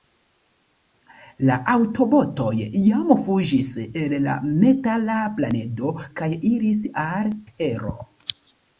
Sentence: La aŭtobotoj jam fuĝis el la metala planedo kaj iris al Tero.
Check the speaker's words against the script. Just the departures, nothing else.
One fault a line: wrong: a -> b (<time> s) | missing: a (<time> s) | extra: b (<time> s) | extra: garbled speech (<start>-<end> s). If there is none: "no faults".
no faults